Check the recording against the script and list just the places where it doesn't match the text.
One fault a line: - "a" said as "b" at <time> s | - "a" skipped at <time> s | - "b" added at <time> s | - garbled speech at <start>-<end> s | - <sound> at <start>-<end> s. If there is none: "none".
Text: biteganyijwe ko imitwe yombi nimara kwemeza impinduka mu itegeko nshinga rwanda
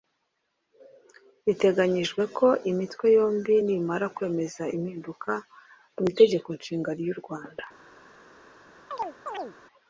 - "ry'u" added at 7.0 s
- chirp at 8.9-9.6 s